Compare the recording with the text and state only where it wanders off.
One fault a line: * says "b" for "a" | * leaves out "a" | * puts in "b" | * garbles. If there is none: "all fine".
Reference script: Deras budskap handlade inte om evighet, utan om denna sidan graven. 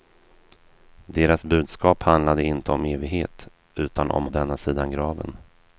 all fine